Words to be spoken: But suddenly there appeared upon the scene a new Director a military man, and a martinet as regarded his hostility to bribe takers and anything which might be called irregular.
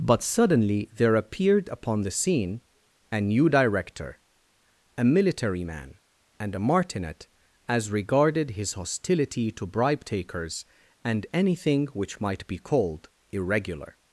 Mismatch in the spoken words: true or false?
false